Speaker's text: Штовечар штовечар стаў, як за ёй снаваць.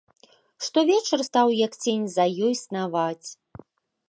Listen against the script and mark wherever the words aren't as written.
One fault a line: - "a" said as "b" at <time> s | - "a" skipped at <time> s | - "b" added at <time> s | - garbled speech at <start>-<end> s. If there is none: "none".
- "штовечар" skipped at 1.2 s
- "цень" added at 1.9 s